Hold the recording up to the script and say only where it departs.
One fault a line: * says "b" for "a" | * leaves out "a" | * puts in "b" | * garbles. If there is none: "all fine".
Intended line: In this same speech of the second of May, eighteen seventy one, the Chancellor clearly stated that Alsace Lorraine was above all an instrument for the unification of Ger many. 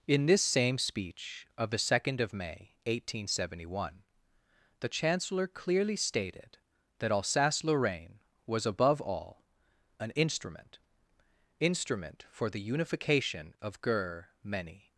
* puts in "instrument"